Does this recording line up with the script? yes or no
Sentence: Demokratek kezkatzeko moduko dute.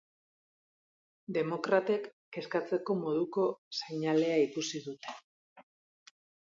no